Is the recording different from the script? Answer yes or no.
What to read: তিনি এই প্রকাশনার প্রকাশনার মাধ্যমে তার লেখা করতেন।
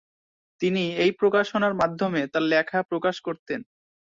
yes